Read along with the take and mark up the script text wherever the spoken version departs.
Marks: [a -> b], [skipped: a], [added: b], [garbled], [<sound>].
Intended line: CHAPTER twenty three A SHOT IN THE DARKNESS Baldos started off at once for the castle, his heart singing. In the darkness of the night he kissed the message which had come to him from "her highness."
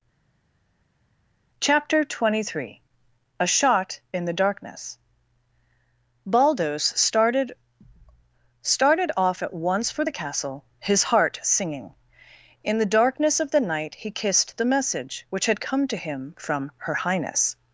CHAPTER twenty three A SHOT IN THE DARKNESS Baldos started [added: started] off at once for the castle, his heart singing. In the darkness of the night he kissed the message which had come to him from "her highness."